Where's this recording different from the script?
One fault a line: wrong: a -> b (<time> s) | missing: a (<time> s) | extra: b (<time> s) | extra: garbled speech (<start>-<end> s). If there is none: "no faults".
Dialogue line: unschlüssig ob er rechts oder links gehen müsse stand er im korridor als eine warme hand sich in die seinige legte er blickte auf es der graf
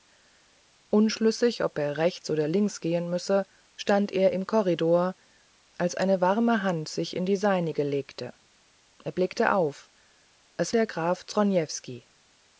no faults